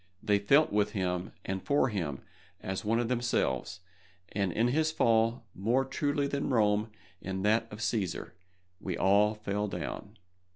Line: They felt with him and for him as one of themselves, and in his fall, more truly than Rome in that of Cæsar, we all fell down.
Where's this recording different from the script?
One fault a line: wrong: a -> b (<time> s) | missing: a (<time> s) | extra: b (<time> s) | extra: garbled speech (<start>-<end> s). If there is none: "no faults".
no faults